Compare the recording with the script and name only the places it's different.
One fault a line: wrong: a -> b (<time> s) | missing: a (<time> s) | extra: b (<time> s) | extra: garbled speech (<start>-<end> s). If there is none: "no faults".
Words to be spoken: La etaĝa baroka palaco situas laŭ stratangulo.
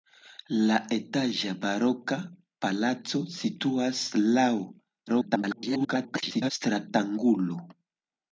extra: garbled speech (5.1-6.5 s)